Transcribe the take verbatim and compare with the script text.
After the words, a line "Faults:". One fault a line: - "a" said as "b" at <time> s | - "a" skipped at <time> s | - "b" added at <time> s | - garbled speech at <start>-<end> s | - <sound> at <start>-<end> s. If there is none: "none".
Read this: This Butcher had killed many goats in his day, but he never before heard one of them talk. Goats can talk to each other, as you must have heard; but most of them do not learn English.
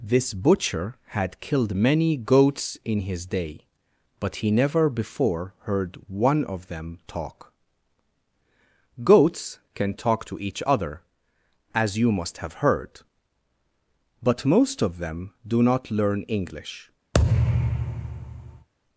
This Butcher had killed many goats in his day, but he never before heard one of them talk. Goats can talk to each other, as you must have heard; but most of them do not learn English.
Faults:
- thud at 17.1-18.7 s